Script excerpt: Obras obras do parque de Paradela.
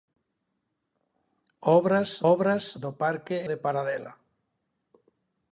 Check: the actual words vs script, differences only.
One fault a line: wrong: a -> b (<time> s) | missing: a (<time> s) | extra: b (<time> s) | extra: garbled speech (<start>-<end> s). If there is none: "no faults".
no faults